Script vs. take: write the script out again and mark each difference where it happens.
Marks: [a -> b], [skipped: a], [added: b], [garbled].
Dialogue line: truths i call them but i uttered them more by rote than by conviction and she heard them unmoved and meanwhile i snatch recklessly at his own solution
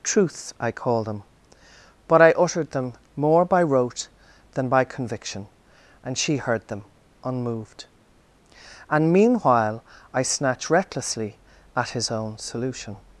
truths i call them but i uttered them more by rote than by conviction and she heard them unmoved and meanwhile i snatch recklessly at his own solution